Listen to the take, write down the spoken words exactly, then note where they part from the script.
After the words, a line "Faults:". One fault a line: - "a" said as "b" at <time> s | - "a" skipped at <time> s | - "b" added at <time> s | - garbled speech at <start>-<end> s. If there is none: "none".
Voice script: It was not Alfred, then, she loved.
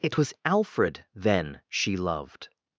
It was Alfred, then, she loved.
Faults:
- "not" skipped at 0.3 s